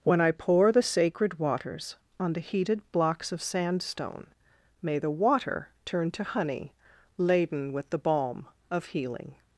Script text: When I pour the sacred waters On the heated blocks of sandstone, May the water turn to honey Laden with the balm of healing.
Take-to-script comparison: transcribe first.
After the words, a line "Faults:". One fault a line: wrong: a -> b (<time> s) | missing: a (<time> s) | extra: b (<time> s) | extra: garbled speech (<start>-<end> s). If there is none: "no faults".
When I pour the sacred waters On the heated blocks of sandstone, May the water turn to honey Laden with the balm of healing.
Faults:
no faults